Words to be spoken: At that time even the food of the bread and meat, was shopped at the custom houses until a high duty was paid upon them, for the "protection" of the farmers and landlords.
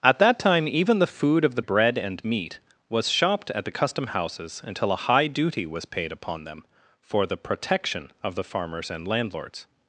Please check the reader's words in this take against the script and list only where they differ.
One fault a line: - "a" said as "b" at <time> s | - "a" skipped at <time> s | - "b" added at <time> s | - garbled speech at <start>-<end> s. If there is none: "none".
none